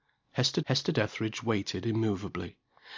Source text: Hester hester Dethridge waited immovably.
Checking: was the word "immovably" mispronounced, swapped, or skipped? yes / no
no